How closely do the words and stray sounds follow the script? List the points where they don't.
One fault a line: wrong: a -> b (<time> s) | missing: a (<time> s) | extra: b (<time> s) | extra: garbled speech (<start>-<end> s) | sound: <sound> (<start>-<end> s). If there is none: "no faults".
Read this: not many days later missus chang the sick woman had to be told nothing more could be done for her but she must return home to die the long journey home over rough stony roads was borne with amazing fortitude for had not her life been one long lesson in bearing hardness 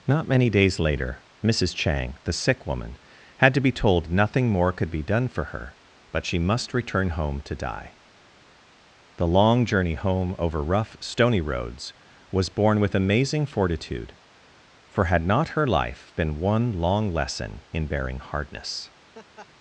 sound: laugh (19.1-19.5 s)